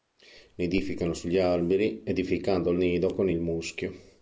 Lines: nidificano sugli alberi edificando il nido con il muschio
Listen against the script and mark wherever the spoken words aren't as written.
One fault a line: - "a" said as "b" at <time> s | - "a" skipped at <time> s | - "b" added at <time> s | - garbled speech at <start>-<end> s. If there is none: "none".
none